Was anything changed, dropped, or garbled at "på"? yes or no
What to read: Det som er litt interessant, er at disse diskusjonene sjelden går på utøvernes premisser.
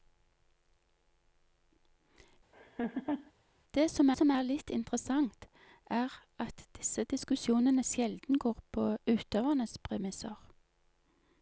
no